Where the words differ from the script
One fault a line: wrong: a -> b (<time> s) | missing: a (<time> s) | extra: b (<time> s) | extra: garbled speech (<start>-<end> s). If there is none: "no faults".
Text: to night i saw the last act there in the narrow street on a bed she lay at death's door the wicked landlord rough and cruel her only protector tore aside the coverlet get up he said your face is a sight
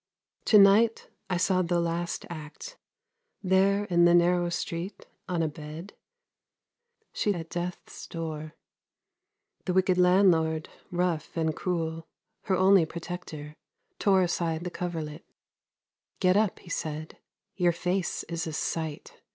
missing: lay (7.3 s)